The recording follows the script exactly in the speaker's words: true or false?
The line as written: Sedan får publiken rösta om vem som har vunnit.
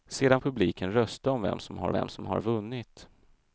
false